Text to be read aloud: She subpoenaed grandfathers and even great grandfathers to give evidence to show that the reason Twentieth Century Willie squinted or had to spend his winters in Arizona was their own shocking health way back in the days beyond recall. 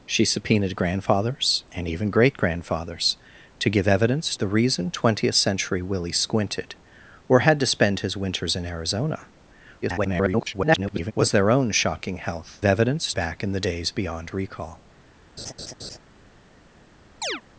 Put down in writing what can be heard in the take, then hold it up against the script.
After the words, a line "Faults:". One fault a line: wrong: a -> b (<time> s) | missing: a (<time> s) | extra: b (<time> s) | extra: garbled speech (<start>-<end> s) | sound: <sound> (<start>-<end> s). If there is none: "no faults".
She subpoenaed grandfathers and even great grandfathers to give evidence the reason Twentieth Century Willie squinted or had to spend his winters in Arizona [garbled] was their own shocking health evidence back in the days beyond recall.
Faults:
missing: to show that (4.3 s)
extra: garbled speech (9.8-11.1 s)
wrong: way -> evidence (12.6 s)
sound: laugh (15.4-16.0 s)
sound: chirp (17.2-17.4 s)